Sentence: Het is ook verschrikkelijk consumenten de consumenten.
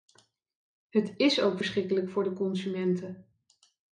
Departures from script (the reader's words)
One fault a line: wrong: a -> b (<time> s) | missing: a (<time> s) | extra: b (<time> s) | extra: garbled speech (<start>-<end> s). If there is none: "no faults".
wrong: consumenten -> voor (2.1 s)